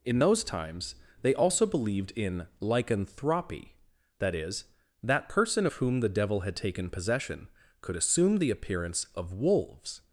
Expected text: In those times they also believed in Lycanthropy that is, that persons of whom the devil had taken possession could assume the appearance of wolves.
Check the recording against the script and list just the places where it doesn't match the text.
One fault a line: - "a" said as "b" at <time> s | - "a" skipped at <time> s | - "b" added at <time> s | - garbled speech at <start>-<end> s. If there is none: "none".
- "persons" said as "person" at 5.3 s